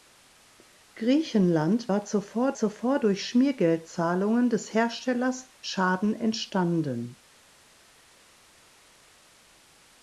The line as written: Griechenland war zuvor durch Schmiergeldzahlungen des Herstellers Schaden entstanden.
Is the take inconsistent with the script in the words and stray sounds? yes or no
yes